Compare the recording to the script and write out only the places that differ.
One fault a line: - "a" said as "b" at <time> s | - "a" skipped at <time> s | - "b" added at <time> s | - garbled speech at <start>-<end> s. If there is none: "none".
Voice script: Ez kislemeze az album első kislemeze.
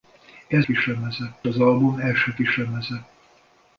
none